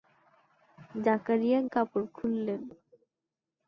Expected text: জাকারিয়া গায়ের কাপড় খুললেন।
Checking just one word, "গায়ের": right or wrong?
wrong